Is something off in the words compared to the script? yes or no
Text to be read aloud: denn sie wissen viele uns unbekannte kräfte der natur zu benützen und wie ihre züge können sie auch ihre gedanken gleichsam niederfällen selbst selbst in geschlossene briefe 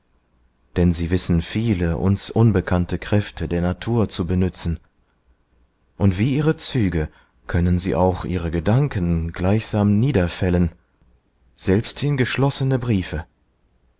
yes